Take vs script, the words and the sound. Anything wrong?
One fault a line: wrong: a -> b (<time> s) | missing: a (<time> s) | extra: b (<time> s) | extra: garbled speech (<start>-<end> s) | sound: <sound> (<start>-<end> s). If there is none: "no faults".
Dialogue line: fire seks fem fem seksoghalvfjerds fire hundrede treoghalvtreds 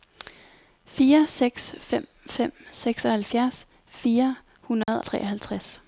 sound: dropout (4.8-4.9 s)